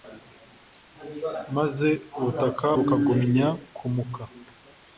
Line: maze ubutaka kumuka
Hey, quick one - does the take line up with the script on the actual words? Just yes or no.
no